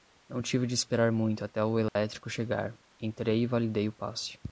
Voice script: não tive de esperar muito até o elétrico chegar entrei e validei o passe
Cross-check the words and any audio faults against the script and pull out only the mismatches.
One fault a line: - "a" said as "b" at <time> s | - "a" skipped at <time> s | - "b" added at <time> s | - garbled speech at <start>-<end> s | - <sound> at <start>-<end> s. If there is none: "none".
- dropout at 1.9-2.0 s